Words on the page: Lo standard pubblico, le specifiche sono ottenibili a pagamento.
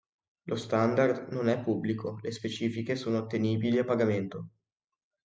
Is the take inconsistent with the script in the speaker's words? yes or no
yes